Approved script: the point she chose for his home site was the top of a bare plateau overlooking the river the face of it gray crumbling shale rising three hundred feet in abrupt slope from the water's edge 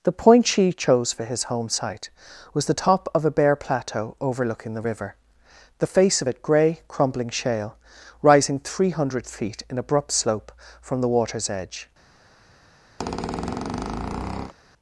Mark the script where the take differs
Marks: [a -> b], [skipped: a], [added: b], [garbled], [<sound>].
the point she chose for his home site was the top of a bare plateau overlooking the river the face of it gray crumbling shale rising three hundred feet in abrupt slope from the water's edge [squeak]